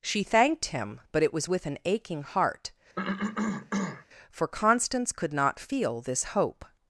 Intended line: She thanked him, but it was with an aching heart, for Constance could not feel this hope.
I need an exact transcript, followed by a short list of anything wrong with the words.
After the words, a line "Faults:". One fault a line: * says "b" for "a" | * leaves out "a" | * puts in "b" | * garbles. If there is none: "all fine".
She thanked him, but it was with an aching heart, for Constance could not feel this hope.
Faults:
all fine